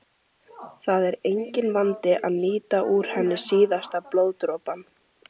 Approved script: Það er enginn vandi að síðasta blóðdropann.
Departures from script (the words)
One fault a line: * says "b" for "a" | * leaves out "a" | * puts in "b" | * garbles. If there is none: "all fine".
* puts in "nýta úr henni"